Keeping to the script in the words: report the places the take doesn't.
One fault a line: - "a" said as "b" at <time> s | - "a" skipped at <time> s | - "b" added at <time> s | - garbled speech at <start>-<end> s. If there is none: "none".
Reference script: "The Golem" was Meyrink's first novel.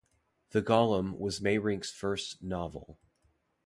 none